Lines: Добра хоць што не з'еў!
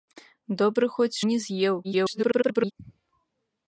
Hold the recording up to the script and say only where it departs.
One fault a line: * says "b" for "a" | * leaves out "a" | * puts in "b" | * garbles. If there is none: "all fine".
* leaves out "што"
* garbles